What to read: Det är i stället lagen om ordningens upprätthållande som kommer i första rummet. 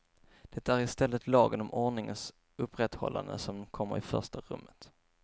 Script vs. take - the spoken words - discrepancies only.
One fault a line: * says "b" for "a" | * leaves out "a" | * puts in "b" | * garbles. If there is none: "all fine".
all fine